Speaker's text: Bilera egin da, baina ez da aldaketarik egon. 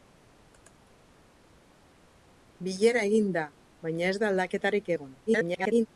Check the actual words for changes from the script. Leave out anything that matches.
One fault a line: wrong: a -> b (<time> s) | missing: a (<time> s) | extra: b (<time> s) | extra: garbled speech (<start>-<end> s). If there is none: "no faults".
extra: garbled speech (5.3-5.9 s)